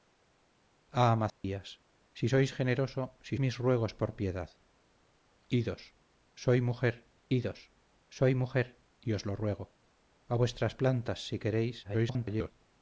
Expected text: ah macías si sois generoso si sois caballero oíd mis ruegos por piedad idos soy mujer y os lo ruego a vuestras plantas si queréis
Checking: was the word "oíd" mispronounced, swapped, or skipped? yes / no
yes